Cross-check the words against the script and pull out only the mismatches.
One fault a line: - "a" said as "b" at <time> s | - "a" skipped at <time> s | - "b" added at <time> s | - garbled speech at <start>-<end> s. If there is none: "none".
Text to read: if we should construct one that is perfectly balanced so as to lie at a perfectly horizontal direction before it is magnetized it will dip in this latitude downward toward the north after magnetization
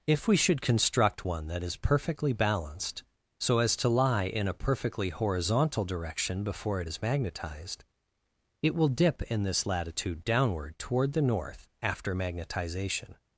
- "at" said as "in" at 4.2 s